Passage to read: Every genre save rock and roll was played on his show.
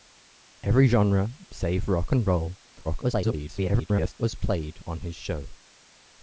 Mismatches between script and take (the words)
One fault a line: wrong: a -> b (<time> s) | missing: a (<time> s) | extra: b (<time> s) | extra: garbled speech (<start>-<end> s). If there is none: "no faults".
extra: garbled speech (2.8-4.1 s)